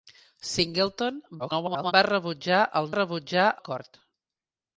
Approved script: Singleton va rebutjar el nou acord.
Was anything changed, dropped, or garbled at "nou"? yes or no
yes